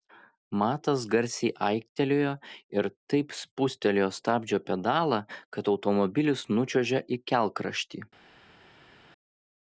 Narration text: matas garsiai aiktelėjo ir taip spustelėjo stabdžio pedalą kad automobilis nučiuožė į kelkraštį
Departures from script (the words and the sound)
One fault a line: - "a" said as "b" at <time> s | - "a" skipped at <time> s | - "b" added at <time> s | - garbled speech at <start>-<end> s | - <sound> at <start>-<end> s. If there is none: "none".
none